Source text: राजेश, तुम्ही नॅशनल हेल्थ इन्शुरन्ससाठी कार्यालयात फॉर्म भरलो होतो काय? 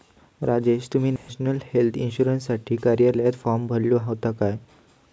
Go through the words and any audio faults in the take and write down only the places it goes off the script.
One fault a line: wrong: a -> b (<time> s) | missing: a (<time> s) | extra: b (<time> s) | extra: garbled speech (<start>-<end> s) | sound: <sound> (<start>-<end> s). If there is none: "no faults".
sound: dropout (1.2-1.3 s)